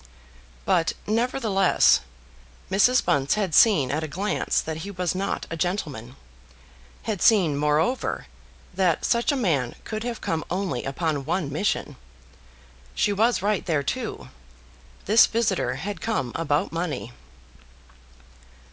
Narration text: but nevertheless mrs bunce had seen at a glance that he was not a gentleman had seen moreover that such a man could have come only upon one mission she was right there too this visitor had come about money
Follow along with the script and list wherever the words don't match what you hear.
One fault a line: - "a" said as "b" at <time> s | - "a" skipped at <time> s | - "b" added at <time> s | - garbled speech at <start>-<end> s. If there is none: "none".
none